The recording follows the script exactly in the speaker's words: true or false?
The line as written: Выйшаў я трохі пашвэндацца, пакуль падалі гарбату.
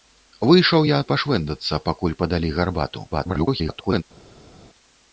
false